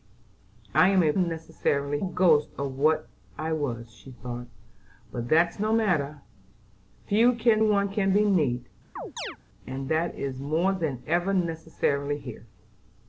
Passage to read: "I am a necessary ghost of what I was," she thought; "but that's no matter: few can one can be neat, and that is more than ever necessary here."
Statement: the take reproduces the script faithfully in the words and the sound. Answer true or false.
false